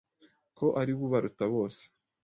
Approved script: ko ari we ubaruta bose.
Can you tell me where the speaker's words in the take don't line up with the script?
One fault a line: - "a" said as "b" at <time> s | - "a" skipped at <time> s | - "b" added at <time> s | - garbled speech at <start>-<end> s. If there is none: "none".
none